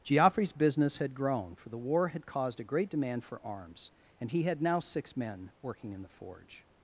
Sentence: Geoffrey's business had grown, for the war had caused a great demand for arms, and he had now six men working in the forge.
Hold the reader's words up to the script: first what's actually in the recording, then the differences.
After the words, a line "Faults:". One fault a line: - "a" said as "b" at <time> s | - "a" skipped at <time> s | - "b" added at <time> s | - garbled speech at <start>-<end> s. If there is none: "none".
Geoffrey's business had grown, for the war had caused a great demand for arms, and he had now six men working in the forge.
Faults:
none